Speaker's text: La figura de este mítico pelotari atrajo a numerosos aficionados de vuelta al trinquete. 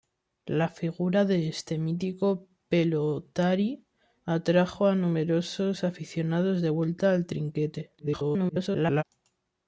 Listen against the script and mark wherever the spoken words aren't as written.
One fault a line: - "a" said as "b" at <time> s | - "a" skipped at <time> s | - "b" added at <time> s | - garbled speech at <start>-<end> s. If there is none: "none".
- garbled speech at 8.0-9.0 s